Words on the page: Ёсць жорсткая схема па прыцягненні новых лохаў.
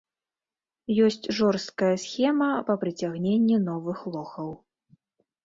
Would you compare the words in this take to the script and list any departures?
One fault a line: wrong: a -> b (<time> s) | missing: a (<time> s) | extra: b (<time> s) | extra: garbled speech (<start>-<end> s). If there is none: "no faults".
no faults